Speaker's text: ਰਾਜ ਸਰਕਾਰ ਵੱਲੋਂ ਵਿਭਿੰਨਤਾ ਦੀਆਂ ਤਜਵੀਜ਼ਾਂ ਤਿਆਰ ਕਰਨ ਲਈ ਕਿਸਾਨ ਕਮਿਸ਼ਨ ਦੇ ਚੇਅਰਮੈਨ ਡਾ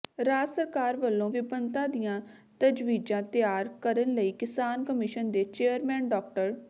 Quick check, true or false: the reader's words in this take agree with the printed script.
true